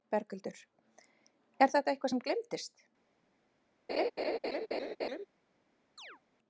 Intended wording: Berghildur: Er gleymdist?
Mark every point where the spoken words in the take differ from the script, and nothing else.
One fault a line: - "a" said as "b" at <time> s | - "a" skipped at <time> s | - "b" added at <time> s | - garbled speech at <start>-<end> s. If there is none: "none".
- "þetta eitthvað sem" added at 1.8 s